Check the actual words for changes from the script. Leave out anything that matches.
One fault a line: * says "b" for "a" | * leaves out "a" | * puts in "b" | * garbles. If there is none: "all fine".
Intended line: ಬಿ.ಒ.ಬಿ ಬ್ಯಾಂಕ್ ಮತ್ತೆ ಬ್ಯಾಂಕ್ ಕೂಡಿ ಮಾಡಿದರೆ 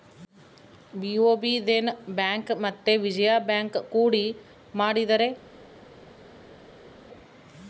* puts in "ದೇನ"
* puts in "ವಿಜಯ"